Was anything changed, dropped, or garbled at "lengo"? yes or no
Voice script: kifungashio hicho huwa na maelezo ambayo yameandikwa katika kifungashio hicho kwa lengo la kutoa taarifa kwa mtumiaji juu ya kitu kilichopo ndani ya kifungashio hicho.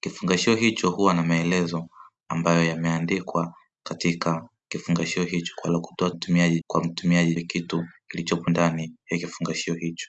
yes